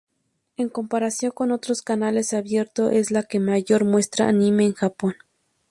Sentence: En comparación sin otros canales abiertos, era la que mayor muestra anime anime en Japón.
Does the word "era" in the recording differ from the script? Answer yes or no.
yes